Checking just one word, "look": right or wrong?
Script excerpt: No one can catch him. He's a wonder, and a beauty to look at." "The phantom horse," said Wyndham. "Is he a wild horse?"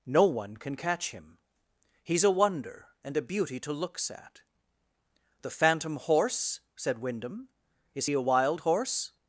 wrong